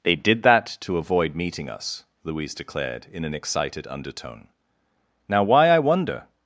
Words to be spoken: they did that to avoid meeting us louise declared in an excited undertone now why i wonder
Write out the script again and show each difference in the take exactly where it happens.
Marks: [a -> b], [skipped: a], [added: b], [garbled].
they did that to avoid meeting us louise declared in an excited undertone now why i wonder